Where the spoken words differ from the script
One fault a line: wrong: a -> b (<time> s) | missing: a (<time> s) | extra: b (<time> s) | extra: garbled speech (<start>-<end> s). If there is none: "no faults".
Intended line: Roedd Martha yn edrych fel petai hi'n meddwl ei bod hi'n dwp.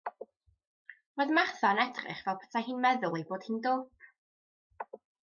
no faults